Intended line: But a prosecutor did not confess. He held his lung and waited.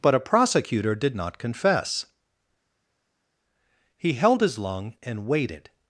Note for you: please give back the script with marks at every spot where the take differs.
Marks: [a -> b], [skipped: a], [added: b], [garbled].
But a prosecutor did not confess. He held his lung and waited.